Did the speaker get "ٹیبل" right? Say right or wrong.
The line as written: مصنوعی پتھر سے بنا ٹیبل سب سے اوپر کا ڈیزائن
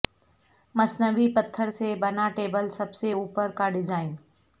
right